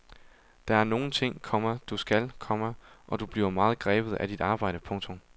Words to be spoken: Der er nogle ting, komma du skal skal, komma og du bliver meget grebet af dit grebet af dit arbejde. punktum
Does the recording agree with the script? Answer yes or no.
no